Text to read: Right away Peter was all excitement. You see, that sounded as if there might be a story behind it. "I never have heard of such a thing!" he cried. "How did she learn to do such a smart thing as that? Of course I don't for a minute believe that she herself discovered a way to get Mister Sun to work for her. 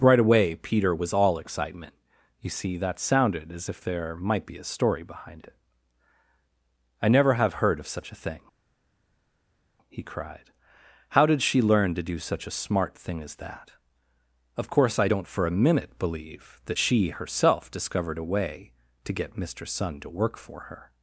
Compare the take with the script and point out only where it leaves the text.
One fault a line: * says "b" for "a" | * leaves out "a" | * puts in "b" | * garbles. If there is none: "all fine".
all fine